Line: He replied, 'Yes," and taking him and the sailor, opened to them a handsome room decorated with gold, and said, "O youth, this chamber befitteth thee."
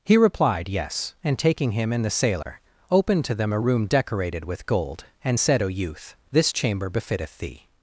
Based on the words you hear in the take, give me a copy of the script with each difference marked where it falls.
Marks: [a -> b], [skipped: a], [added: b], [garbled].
He replied, 'Yes," and taking him and the sailor, opened to them a [skipped: handsome] room decorated with gold, and said, "O youth, this chamber befitteth thee."